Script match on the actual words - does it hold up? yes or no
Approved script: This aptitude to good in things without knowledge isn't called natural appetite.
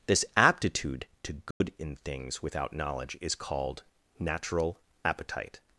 no